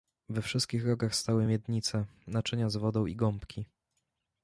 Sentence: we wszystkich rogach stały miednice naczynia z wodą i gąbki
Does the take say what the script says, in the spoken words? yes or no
yes